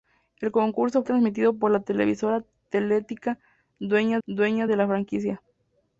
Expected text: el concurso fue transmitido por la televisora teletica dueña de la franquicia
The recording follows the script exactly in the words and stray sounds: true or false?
false